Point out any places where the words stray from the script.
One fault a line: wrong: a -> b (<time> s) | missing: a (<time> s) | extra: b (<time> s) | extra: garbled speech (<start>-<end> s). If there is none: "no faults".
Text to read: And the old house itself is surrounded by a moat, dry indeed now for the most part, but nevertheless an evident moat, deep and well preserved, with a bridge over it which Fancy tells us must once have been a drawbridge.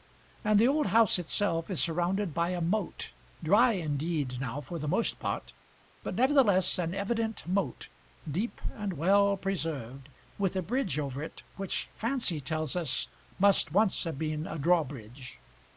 no faults